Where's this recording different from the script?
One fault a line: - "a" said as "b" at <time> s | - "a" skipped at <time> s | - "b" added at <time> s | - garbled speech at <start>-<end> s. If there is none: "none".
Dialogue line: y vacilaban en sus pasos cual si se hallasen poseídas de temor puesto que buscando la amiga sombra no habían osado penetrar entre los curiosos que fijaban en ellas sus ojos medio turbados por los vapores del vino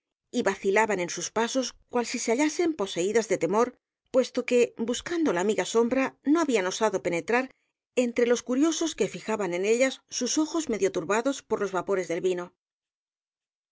none